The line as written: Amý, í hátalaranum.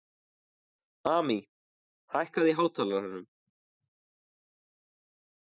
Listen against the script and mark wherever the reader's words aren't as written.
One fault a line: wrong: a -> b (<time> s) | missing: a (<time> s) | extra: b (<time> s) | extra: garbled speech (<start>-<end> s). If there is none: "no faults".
extra: hækkaðu (2.1 s)